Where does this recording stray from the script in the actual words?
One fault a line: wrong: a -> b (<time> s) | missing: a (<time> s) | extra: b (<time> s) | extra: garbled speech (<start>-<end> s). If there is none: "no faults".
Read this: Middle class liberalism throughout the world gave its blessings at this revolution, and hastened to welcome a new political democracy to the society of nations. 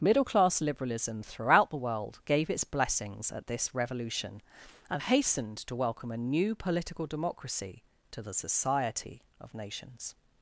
no faults